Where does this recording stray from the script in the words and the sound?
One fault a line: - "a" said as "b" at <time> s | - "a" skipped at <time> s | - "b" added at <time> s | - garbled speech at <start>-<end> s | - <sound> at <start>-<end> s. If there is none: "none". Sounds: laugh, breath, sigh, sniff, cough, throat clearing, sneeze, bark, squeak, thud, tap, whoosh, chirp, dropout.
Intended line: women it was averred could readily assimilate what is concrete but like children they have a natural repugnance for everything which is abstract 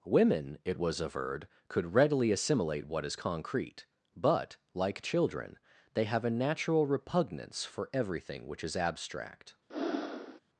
- breath at 9.7-10.4 s